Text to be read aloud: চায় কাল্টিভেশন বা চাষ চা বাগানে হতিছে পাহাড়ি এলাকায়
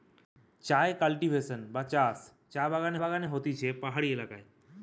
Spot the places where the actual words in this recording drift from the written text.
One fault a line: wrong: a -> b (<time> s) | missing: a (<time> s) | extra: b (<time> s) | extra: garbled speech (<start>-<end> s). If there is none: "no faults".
extra: বাগানে (3.0 s)